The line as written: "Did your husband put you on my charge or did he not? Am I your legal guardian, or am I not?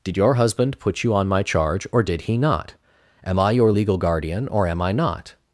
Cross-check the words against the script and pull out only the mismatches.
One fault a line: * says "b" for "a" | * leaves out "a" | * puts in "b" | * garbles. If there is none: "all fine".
all fine